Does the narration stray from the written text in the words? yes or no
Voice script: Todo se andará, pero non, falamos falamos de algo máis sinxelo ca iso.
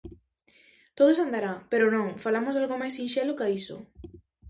yes